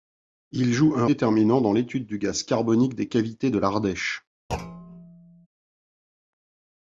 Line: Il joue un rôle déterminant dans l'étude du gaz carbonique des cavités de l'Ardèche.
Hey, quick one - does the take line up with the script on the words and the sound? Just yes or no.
no